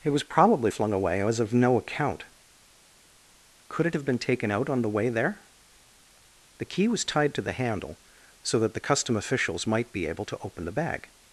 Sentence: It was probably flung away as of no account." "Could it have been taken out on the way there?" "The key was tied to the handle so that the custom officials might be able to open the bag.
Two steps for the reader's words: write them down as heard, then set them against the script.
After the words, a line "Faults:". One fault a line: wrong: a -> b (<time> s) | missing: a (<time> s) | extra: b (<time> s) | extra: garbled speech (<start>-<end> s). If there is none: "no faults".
It was probably flung away as of no account." "Could it have been taken out on the way there?" "The key was tied to the handle so that the custom officials might be able to open the bag.
Faults:
no faults